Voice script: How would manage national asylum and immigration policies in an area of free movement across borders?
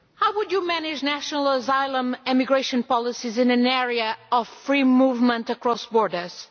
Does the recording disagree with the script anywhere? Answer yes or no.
yes